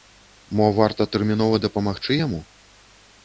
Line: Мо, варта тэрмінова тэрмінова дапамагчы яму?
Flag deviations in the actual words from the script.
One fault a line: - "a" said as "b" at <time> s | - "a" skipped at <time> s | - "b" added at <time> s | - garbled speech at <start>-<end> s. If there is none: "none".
- "тэрмінова" skipped at 1.6 s